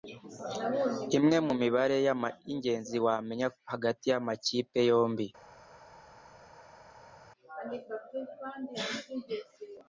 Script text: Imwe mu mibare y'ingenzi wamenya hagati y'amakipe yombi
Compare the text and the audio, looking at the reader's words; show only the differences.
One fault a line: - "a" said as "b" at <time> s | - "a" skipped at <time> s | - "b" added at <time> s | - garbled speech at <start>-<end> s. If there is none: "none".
none